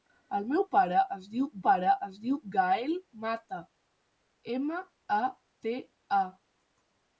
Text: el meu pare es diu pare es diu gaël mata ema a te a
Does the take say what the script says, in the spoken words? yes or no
yes